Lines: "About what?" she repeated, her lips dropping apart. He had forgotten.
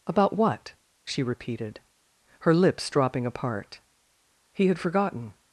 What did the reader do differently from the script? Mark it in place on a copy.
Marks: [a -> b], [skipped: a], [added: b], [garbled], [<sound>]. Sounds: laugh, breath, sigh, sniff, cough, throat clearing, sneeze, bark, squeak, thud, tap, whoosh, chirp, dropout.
"About what?" she repeated, her lips dropping apart. He had forgotten.